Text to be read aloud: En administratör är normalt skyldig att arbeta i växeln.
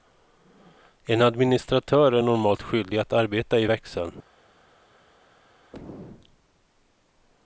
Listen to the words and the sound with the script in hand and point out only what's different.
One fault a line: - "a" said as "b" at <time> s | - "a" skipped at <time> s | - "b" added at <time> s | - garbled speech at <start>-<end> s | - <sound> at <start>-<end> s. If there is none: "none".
none